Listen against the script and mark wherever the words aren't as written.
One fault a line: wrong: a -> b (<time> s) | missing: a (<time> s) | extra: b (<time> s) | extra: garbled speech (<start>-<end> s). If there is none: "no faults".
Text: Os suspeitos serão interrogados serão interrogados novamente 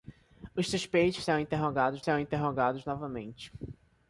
no faults